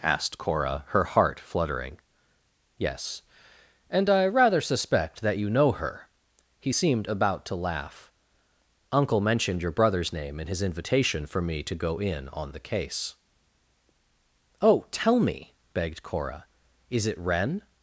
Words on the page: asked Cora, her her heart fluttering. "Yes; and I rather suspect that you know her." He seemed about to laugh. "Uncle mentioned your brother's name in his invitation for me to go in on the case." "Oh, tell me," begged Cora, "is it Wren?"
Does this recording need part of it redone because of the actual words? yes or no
yes